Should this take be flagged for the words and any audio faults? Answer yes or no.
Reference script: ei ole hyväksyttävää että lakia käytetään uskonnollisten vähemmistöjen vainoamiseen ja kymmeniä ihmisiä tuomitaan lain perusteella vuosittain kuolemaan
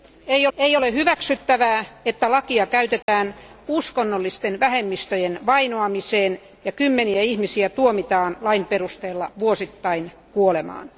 yes